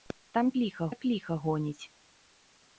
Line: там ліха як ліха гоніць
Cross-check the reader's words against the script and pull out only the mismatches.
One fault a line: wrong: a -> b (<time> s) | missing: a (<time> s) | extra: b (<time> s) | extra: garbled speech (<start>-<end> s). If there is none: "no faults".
no faults